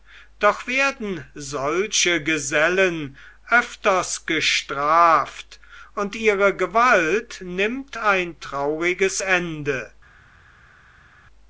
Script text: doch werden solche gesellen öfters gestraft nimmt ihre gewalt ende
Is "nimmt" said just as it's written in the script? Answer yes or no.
no